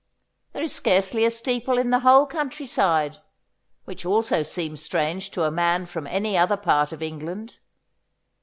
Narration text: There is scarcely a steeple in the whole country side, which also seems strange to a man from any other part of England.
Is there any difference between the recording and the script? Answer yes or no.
no